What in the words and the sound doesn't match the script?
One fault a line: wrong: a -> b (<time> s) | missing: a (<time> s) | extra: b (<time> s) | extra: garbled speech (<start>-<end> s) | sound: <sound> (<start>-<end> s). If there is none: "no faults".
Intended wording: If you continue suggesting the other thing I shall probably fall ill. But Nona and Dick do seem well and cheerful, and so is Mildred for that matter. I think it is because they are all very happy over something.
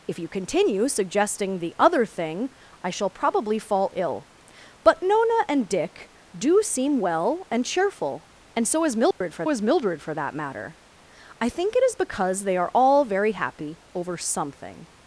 sound: dropout (9.1-9.2 s)
extra: is Mildred for (9.5 s)